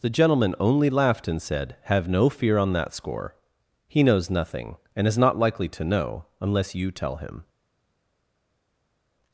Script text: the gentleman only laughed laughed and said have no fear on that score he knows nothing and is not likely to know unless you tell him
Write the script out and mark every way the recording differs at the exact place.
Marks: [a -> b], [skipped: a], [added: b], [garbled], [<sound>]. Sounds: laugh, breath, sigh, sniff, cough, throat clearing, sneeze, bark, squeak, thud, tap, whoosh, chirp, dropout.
the gentleman only laughed [skipped: laughed] and said have no fear on that score he knows nothing and is not likely to know unless you tell him